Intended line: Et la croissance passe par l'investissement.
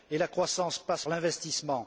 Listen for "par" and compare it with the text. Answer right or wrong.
wrong